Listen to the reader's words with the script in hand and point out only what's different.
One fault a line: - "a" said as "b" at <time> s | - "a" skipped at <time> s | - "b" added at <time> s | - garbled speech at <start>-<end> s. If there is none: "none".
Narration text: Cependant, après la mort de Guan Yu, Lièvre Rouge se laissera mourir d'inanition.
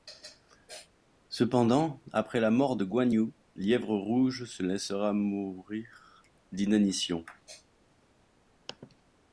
none